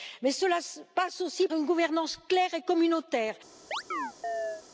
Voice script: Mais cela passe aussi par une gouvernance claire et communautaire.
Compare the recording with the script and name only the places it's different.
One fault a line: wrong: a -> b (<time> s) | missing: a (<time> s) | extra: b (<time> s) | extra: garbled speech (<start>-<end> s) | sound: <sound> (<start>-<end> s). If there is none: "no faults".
missing: par (1.5 s)
sound: chirp (3.7-4.6 s)